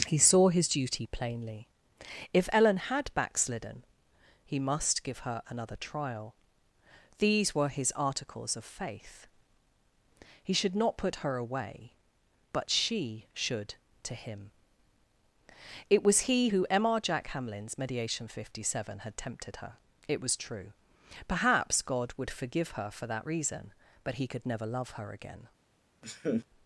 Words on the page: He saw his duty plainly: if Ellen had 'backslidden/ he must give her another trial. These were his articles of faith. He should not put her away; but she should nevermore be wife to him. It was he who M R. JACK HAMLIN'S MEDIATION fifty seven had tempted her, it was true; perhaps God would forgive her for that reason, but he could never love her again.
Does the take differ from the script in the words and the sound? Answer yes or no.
yes